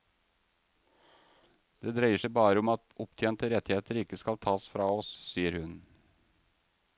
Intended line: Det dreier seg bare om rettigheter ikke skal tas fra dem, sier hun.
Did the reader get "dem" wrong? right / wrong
wrong